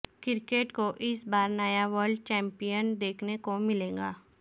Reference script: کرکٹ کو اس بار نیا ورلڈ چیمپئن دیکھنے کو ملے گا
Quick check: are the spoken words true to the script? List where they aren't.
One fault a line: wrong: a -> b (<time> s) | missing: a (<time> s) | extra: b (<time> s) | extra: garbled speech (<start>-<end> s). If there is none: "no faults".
no faults